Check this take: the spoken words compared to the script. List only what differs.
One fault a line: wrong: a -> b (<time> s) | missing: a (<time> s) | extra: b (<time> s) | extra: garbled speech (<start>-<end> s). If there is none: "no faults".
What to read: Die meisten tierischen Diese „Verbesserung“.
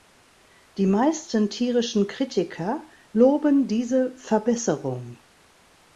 extra: Kritiker loben (2.1 s)